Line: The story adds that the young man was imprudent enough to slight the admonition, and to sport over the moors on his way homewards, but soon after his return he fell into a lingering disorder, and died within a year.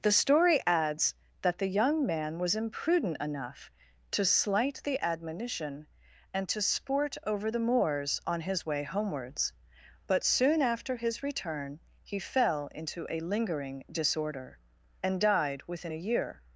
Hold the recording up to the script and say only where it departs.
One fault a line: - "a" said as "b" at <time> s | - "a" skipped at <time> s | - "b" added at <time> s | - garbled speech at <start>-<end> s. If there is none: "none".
none